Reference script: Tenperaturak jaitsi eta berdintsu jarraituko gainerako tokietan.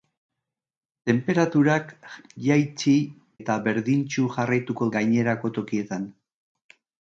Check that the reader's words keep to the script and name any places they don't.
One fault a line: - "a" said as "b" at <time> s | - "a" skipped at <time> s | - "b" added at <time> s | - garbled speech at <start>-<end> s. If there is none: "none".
none